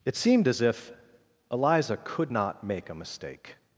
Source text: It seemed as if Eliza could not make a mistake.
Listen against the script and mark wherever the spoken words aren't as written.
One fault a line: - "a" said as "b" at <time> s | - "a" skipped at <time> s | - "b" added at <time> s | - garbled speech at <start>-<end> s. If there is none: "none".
none